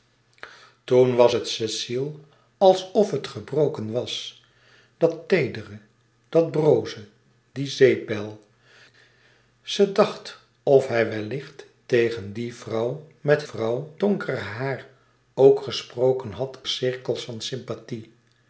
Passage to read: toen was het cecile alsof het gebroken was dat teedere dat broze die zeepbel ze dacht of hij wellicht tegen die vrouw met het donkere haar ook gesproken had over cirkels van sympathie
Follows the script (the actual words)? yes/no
no